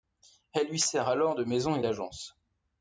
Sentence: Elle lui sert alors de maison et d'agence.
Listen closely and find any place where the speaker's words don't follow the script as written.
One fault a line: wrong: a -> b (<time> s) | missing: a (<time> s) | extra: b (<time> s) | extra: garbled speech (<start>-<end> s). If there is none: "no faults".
no faults